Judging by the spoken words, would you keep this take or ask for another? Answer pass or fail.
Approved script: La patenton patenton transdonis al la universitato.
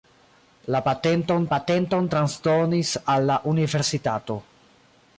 pass